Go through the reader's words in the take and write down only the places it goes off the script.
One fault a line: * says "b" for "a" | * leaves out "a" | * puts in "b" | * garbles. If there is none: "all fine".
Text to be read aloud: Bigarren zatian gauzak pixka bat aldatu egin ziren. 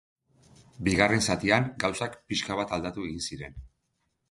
all fine